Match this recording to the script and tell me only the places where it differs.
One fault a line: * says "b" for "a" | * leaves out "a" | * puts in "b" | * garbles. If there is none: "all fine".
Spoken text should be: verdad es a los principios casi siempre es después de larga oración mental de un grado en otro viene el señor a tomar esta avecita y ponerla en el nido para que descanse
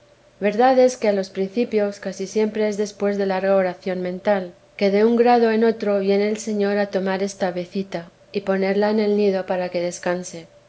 * puts in "que"
* puts in "que"